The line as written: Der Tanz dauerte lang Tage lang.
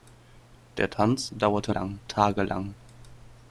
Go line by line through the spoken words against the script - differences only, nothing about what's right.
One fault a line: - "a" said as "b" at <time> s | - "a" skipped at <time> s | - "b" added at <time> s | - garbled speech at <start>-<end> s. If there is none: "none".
none